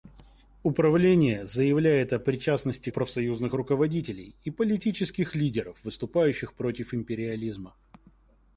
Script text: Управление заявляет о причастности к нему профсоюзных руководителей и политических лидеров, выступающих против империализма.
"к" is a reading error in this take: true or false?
true